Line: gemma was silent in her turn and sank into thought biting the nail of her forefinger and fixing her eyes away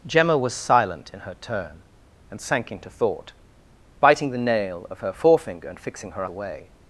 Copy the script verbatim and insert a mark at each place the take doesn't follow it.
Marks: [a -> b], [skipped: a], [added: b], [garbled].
gemma was silent in her turn and sank into thought biting the nail of her forefinger and fixing her [skipped: eyes] away